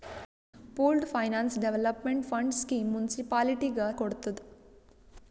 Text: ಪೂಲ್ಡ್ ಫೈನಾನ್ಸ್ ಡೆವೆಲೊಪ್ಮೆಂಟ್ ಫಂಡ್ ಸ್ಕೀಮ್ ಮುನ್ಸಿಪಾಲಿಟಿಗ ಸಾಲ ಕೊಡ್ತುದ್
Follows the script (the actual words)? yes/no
no